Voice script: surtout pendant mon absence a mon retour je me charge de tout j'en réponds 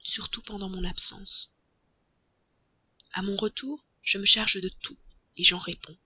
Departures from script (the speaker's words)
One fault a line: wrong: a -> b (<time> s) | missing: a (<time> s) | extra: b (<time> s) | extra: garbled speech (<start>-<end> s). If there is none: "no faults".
no faults